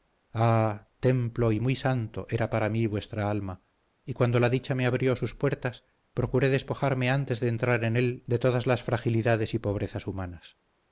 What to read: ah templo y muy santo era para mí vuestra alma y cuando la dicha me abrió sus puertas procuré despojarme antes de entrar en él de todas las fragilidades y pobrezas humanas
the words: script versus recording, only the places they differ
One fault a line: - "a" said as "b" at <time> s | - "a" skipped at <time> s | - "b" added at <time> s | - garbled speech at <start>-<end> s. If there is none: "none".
none